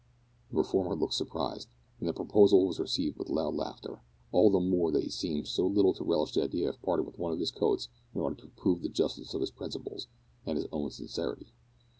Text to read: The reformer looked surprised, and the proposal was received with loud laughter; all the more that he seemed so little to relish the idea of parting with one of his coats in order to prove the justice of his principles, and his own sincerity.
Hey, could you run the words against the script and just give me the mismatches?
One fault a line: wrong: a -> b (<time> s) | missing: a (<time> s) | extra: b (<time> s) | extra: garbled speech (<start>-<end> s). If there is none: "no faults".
no faults